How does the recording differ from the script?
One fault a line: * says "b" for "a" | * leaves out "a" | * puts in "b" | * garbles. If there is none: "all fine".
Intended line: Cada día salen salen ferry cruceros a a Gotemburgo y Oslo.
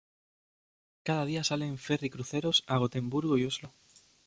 * leaves out "salen"
* leaves out "a"